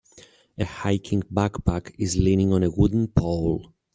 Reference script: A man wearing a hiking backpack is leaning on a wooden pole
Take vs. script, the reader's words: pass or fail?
fail